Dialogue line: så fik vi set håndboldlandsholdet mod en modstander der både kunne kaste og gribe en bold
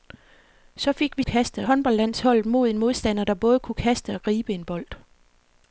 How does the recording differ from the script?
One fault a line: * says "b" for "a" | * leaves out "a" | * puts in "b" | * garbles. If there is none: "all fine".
* says "kaste" for "set"